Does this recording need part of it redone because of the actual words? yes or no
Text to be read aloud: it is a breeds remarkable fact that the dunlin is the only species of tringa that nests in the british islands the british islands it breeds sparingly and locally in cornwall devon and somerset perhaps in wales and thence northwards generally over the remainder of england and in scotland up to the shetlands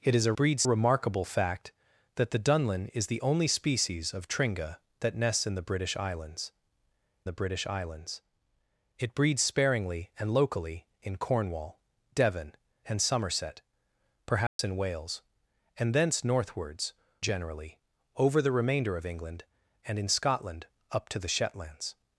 no